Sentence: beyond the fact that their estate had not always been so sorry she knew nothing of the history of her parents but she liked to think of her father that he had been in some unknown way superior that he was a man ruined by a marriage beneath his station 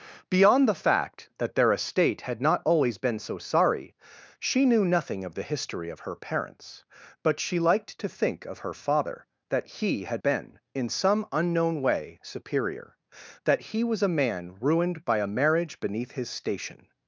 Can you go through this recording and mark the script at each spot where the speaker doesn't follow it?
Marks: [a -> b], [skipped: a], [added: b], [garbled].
beyond the fact that their estate had not always been so sorry she knew nothing of the history of her parents but she liked to think of her father that he had been in some unknown way superior that he was a man ruined by a marriage beneath his station